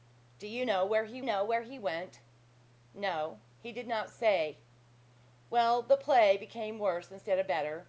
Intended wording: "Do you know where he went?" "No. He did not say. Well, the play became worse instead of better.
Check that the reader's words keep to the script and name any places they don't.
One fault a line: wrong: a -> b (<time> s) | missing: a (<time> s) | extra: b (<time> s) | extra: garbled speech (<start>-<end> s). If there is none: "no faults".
extra: know where he (1.2 s)